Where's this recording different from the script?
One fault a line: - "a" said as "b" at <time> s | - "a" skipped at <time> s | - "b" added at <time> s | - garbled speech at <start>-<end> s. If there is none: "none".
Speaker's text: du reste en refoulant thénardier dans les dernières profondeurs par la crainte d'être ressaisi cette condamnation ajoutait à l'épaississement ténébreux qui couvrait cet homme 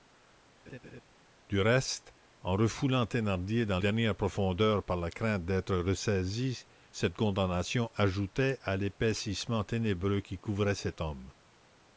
- "les" skipped at 3.8 s